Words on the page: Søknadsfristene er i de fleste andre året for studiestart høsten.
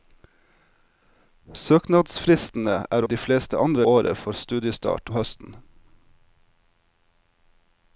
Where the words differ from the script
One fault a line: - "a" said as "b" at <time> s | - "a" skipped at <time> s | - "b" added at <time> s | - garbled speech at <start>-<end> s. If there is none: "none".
none